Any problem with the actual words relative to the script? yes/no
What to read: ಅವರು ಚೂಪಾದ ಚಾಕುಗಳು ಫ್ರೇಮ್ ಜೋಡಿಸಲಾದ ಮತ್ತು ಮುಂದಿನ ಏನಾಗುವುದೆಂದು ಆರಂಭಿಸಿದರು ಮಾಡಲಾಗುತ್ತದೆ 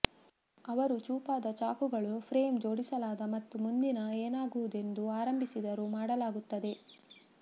no